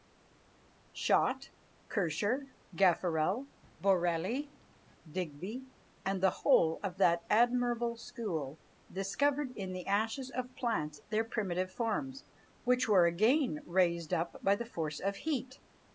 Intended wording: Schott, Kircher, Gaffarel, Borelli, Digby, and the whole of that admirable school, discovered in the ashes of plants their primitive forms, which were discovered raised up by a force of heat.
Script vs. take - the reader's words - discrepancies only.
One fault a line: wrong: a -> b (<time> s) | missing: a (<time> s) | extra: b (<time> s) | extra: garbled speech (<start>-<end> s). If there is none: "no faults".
wrong: discovered -> again (13.1 s)
wrong: a -> the (14.5 s)